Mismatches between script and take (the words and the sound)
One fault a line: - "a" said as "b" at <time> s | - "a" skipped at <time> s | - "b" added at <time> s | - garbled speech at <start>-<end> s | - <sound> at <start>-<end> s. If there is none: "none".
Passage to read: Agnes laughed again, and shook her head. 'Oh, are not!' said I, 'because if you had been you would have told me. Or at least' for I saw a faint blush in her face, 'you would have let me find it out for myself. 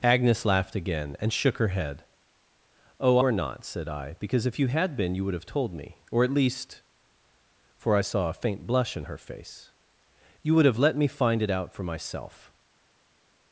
none